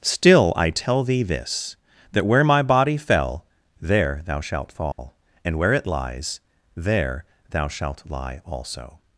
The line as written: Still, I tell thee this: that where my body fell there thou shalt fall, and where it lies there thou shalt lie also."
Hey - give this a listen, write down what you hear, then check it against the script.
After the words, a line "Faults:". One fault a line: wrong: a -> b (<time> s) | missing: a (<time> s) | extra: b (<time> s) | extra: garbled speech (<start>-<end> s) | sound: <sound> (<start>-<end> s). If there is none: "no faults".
Still, I tell thee this: that where my body fell there thou shalt fall, and where it lies there thou shalt lie also."
Faults:
sound: dropout (4.9-5.0 s)